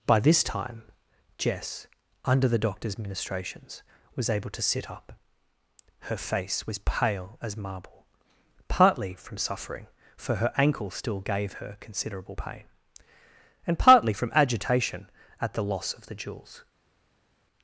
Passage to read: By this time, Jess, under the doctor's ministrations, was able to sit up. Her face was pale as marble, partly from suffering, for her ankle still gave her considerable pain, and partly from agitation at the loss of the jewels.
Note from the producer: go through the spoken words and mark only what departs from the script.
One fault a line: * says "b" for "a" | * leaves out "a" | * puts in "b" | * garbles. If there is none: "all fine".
all fine